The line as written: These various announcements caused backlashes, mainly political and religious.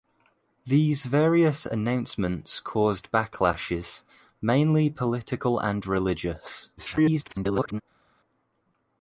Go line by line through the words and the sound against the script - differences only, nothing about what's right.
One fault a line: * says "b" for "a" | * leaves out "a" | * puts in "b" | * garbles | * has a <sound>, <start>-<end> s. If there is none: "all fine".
* garbles